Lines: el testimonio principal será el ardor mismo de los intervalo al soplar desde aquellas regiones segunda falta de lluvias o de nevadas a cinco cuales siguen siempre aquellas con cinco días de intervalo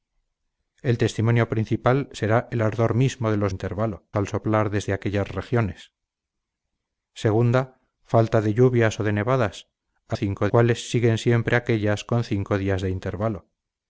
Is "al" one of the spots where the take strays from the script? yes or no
no